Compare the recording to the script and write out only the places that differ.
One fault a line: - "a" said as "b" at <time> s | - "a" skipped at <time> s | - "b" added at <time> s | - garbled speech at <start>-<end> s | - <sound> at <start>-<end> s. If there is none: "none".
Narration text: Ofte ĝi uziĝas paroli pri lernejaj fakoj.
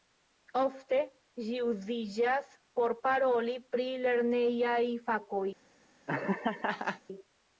- "por" added at 2.8 s
- laugh at 6.1-7.0 s